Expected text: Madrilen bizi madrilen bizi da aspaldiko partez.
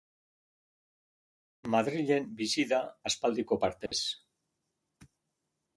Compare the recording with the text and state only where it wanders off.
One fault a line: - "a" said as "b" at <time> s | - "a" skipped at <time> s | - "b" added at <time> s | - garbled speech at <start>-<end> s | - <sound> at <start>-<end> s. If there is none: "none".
- "madrilen bizi" skipped at 2.7 s
- dropout at 3.9-3.9 s